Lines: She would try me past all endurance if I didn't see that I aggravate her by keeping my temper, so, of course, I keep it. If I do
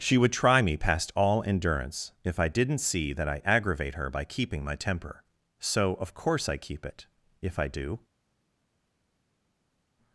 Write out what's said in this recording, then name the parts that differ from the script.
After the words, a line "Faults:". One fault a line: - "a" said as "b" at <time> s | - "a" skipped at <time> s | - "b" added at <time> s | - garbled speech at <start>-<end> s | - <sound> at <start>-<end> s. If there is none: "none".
She would try me past all endurance if I didn't see that I aggravate her by keeping my temper, so, of course, I keep it. If I do
Faults:
none